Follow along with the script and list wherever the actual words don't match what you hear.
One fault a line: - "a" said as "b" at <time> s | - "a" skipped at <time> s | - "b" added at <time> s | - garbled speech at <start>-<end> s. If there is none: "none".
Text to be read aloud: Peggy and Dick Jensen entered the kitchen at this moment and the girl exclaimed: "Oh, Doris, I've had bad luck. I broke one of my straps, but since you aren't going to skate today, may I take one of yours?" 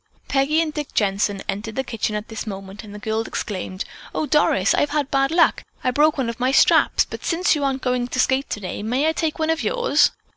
none